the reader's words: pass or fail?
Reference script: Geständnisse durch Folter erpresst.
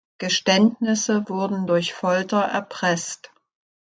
fail